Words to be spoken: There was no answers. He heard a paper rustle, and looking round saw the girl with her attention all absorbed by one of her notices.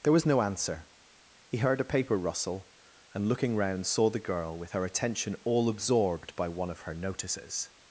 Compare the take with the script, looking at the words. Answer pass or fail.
fail